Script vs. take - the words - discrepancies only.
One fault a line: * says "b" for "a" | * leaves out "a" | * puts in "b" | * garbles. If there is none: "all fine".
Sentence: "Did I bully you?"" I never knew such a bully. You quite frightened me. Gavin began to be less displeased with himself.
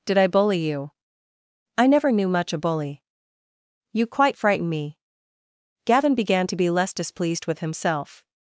* says "much" for "such"
* says "frighten" for "frightened"